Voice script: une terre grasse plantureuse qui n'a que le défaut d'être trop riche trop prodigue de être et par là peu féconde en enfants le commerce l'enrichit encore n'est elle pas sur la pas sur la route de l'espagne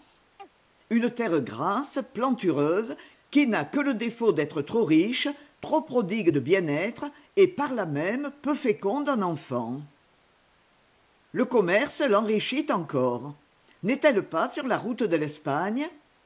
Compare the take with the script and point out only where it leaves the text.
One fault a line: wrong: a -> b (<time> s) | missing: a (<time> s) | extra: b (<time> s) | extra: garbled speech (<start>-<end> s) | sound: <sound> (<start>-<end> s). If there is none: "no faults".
sound: chirp (0.4-0.5 s)
extra: bien (6.4 s)
extra: même (7.9 s)
missing: pas sur la (14.8 s)